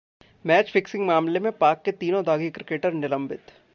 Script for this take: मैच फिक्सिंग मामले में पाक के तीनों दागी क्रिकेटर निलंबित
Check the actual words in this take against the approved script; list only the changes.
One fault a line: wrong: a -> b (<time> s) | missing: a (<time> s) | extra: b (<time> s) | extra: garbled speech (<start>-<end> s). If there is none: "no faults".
no faults